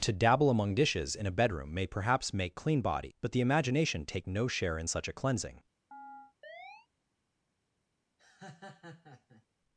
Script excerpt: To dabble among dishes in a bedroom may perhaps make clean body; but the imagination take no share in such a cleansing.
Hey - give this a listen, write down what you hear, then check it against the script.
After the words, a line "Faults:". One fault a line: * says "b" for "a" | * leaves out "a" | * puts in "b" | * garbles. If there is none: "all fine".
To dabble among dishes in a bedroom may perhaps make clean body; but the imagination take no share in such a cleansing.
Faults:
all fine